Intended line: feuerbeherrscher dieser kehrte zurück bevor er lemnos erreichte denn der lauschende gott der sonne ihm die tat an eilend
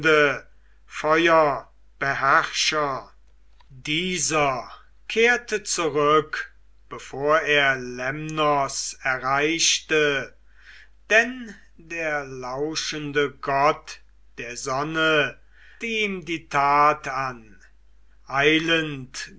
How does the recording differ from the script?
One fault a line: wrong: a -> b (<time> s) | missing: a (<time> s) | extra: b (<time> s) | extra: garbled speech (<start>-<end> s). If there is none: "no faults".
no faults